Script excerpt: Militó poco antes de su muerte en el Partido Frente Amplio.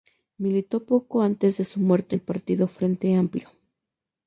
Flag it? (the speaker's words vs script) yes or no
yes